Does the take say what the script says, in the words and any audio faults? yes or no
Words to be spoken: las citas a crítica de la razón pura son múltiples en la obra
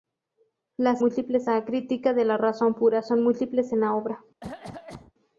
no